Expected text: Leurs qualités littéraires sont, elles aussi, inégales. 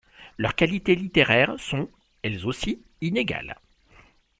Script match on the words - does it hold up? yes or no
yes